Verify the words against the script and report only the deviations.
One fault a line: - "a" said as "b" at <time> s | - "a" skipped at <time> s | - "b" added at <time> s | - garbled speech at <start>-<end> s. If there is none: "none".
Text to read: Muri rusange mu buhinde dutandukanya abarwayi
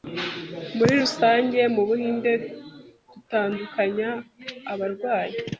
none